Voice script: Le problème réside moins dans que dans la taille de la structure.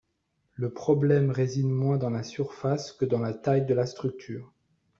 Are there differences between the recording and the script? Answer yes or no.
yes